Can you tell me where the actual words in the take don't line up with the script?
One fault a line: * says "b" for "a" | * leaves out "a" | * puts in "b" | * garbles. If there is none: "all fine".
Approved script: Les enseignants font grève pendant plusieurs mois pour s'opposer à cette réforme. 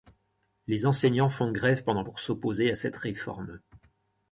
* leaves out "plusieurs mois"